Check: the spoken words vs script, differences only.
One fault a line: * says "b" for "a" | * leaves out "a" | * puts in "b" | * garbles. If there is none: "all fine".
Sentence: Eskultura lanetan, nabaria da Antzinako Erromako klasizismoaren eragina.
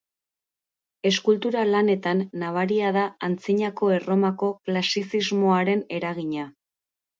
all fine